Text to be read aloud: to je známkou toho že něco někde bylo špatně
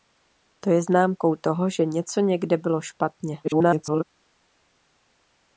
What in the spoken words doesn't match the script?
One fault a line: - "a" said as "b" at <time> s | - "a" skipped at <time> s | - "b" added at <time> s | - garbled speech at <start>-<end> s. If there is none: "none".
- garbled speech at 3.4-4.0 s